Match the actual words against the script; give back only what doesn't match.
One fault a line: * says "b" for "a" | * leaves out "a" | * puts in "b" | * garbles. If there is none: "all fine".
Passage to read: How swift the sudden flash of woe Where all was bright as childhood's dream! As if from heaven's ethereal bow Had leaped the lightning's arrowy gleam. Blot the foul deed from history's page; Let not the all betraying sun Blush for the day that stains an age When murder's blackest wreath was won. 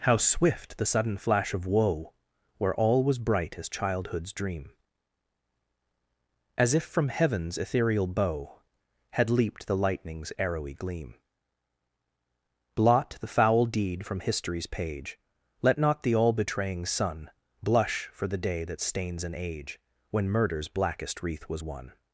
all fine